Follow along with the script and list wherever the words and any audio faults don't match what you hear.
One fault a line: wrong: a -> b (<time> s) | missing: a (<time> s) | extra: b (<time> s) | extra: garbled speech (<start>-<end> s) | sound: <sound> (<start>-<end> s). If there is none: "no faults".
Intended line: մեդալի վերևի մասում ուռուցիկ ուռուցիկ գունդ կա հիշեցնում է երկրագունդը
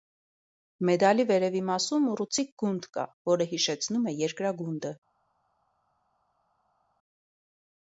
missing: ուռուցիկ (2.5 s)
extra: որը (3.3 s)